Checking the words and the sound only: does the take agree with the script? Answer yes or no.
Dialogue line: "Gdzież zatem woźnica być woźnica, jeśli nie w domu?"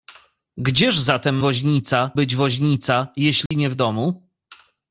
no